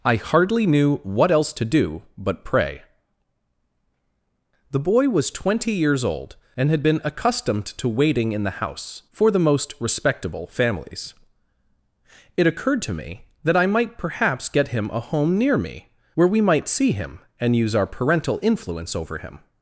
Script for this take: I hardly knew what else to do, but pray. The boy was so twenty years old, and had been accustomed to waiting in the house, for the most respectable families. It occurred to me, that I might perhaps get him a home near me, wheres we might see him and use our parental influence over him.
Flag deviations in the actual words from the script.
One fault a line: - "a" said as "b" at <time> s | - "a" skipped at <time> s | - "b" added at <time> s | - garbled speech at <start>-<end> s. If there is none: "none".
- "so" skipped at 5.3 s
- "wheres" said as "where" at 16.1 s